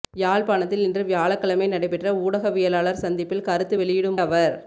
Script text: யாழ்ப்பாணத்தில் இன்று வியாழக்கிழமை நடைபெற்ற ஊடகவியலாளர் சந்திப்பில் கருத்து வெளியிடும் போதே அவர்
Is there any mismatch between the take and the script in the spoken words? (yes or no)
yes